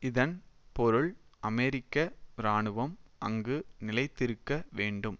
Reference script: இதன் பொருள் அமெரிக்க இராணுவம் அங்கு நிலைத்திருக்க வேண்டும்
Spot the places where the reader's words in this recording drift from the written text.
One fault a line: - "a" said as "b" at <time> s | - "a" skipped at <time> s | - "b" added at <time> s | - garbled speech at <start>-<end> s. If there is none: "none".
none